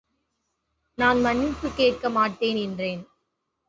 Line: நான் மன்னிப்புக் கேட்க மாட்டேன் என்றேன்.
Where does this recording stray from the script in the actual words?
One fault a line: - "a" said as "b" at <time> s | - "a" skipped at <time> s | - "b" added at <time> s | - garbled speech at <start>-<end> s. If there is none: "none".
none